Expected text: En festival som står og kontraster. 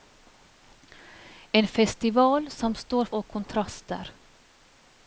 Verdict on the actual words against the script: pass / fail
pass